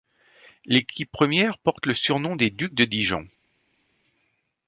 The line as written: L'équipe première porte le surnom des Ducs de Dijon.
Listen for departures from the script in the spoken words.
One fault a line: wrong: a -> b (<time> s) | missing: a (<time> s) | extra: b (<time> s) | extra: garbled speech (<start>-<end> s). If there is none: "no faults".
no faults